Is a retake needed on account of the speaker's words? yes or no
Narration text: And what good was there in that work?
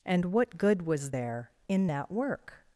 no